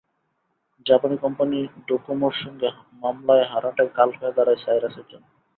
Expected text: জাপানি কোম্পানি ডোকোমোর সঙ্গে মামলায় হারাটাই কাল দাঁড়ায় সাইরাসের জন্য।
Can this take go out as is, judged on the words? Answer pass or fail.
fail